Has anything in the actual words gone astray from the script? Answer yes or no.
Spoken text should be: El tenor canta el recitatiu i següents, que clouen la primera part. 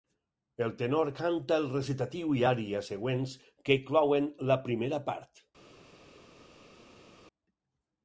yes